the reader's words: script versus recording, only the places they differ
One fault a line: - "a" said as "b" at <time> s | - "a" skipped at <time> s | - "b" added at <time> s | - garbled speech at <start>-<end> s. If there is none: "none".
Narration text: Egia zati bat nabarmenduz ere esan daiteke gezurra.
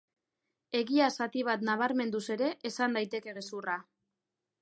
none